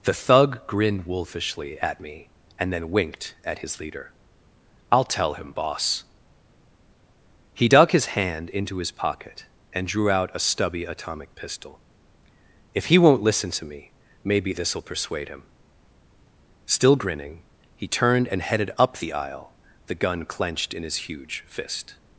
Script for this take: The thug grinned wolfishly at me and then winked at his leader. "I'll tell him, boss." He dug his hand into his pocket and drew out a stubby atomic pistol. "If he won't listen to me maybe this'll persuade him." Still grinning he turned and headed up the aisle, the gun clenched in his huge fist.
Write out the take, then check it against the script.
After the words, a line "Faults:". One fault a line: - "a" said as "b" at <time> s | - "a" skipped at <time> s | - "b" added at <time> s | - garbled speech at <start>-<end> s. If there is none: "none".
The thug grinned wolfishly at me and then winked at his leader. "I'll tell him, boss." He dug his hand into his pocket and drew out a stubby atomic pistol. "If he won't listen to me maybe this'll persuade him." Still grinning he turned and headed up the aisle, the gun clenched in his huge fist.
Faults:
none